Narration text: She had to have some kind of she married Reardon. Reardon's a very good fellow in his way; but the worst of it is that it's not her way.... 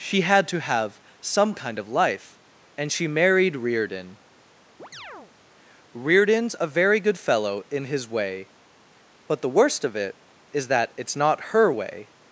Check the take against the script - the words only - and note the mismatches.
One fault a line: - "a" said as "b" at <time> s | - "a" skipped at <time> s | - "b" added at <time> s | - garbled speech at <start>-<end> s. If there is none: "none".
- "life and" added at 1.9 s